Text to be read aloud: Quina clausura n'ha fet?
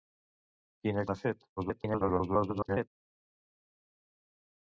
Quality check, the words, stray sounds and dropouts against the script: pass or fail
fail